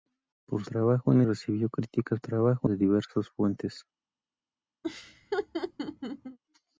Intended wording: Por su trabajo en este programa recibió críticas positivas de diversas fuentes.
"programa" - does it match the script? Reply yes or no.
no